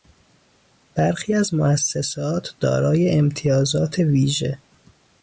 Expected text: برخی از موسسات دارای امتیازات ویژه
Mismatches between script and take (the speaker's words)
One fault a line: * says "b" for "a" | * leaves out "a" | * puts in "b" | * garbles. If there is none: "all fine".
all fine